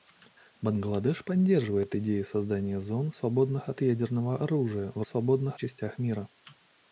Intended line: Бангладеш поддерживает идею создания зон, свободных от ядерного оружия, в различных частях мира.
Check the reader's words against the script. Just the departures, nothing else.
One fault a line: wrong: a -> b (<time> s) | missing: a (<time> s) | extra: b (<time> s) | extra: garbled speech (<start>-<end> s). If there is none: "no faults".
wrong: различных -> свободных (5.0 s)